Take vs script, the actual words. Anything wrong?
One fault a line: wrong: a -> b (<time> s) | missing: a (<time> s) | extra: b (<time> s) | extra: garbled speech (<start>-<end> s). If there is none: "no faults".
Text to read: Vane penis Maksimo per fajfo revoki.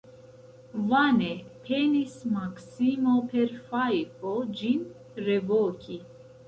extra: ĝin (4.6 s)